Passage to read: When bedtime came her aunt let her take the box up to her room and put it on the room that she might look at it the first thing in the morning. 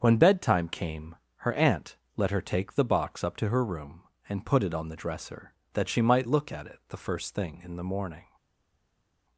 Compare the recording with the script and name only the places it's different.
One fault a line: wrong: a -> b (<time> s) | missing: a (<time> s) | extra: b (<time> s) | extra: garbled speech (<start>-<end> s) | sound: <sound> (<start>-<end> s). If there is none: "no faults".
wrong: room -> dresser (5.0 s)